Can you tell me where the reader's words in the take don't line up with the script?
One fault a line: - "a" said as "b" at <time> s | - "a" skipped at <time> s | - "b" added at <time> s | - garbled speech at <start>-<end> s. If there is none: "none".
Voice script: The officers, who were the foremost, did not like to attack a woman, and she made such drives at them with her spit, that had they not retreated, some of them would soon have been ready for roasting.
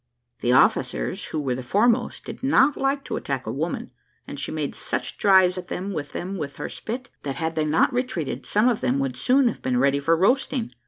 - "them with" added at 6.1 s